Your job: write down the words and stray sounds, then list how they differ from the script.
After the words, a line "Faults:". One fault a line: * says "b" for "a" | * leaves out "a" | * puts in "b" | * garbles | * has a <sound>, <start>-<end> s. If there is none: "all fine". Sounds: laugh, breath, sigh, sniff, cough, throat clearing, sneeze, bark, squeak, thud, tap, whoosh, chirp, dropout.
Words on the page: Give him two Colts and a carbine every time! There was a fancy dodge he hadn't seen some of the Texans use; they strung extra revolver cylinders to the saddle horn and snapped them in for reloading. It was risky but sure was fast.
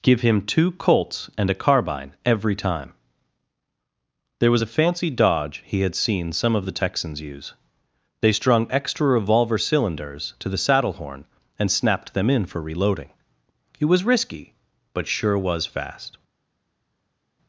Give him two Colts and a carbine every time! There was a fancy dodge he had seen some of the Texans use; they strung extra revolver cylinders to the saddle horn and snapped them in for reloading. It was risky but sure was fast.
Faults:
* says "had" for "hadn't"